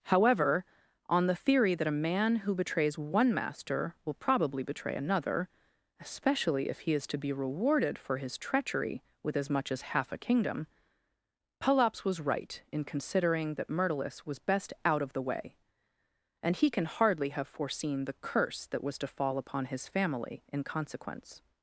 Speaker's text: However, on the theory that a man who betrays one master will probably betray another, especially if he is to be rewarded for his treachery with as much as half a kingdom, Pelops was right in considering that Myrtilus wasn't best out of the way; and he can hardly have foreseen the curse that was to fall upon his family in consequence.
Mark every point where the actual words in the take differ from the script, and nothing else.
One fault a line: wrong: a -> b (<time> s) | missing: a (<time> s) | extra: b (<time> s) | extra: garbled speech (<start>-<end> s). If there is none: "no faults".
wrong: wasn't -> was (14.2 s)